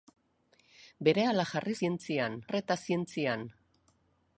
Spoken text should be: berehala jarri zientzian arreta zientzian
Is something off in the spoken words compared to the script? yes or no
no